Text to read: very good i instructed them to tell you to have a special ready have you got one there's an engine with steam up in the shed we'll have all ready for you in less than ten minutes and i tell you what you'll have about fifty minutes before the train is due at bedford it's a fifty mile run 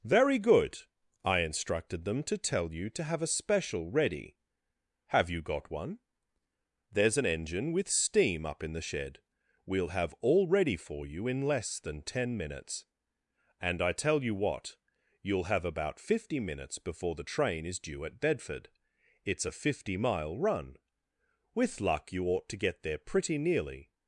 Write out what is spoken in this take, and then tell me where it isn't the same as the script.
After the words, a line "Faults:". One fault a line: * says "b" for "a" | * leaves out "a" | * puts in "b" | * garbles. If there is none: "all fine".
very good i instructed them to tell you to have a special ready have you got one there's an engine with steam up in the shed we'll have all ready for you in less than ten minutes and i tell you what you'll have about fifty minutes before the train is due at bedford it's a fifty mile run with luck you ought to get there pretty nearly
Faults:
* puts in "with luck you ought to get there pretty nearly"